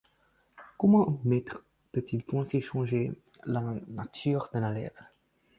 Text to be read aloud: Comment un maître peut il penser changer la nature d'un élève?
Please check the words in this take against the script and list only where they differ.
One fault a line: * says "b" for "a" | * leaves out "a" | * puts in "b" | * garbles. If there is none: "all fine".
all fine